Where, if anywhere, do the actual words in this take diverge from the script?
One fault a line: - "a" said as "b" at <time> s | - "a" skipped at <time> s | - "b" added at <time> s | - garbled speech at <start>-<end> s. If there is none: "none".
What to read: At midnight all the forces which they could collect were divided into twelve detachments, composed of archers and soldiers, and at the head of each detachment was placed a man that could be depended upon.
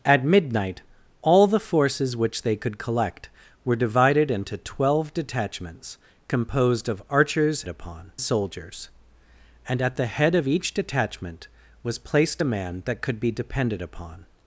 - "and" said as "upon" at 7.7 s